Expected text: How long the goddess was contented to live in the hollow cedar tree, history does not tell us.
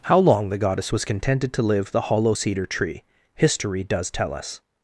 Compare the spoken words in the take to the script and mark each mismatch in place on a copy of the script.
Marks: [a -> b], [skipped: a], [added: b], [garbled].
How long the goddess was contented to live [skipped: in] the hollow cedar tree, history does [skipped: not] tell us.